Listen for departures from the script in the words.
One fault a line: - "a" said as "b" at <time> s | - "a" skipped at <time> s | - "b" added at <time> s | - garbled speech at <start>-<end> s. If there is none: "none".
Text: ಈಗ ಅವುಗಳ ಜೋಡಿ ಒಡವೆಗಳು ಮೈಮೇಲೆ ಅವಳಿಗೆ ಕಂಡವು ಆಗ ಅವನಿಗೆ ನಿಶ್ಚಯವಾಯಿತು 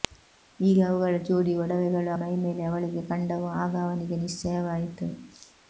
none